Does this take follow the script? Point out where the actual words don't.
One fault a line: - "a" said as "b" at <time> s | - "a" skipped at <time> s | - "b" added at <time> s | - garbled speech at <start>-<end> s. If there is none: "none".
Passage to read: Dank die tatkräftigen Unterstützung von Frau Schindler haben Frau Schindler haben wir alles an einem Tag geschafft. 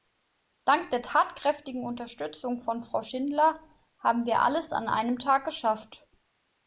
- "die" said as "der" at 0.9 s
- "Frau Schindler haben" skipped at 4.3 s